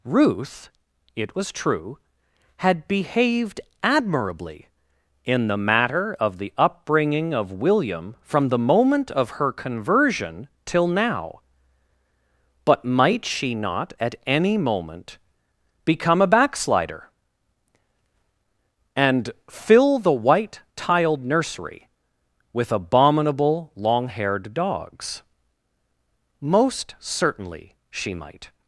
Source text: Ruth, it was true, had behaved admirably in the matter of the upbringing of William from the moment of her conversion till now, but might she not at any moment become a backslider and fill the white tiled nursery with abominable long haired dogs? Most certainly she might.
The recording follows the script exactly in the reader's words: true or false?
true